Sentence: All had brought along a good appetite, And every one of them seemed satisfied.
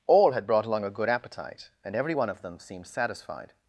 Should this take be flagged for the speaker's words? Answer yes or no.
no